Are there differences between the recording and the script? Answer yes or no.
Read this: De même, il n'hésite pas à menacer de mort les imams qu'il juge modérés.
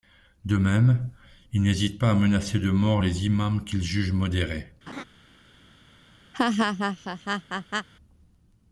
no